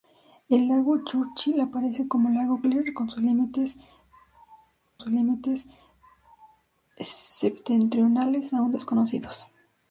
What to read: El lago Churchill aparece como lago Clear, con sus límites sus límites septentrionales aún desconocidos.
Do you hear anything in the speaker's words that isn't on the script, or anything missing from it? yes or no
no